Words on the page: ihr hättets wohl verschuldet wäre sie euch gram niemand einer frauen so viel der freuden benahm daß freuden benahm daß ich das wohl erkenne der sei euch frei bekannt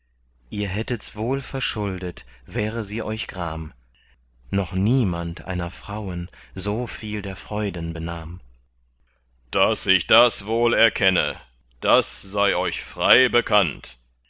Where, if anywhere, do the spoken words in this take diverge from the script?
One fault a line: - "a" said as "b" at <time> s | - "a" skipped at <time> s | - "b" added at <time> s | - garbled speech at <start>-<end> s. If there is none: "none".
- "noch" added at 4.5 s
- "freuden benahm daß" skipped at 9.9 s
- "der" said as "das" at 11.8 s